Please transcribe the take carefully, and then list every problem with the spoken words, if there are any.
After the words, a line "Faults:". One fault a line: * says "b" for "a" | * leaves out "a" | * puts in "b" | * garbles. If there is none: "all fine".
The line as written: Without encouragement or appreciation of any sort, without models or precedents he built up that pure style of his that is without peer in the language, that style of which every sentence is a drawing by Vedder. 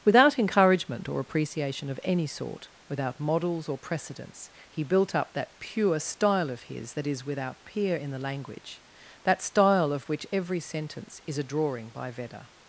Without encouragement or appreciation of any sort, without models or precedents he built up that pure style of his that is without peer in the language, that style of which every sentence is a drawing by Vedder.
Faults:
all fine